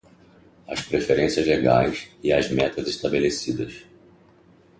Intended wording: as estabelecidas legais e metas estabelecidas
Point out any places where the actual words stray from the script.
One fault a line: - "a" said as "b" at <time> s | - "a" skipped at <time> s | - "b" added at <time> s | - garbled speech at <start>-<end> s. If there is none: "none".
- "estabelecidas" said as "preferências" at 0.8 s
- "as" added at 2.3 s